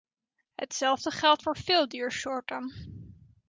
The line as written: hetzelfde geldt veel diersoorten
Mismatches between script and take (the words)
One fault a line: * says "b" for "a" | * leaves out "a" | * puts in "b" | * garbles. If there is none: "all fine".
* puts in "voor"